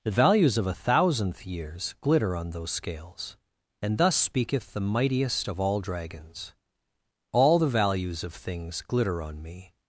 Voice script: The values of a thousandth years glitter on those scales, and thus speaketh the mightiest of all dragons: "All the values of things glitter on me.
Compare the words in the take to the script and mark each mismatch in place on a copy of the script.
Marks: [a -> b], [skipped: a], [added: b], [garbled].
The values of a thousandth years glitter on those scales, and thus speaketh the mightiest of all dragons: "All the values of things glitter on me.